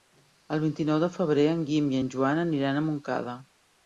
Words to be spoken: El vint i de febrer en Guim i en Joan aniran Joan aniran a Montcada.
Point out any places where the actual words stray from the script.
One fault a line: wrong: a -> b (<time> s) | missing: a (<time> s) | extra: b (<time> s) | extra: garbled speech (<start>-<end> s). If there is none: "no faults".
extra: nou (0.9 s)
missing: Joan aniran (2.8 s)